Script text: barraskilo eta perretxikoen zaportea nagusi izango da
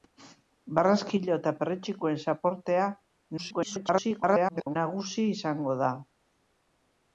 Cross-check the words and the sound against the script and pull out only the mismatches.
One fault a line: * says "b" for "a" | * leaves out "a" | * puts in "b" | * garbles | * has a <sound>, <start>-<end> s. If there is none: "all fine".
* garbles